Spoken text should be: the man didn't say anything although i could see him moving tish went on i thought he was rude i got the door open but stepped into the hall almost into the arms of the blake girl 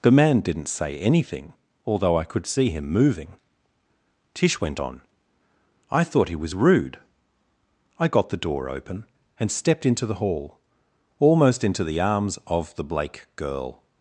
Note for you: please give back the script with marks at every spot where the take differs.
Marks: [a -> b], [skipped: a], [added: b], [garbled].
the man didn't say anything although i could see him moving tish went on i thought he was rude i got the door open [but -> and] stepped into the hall almost into the arms of the blake girl